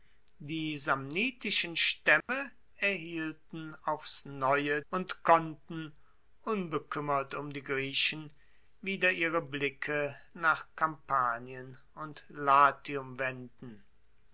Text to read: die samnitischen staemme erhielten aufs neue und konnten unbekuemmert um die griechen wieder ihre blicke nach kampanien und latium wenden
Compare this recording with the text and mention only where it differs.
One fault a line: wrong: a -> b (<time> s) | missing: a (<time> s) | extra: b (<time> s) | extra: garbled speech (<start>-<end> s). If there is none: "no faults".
no faults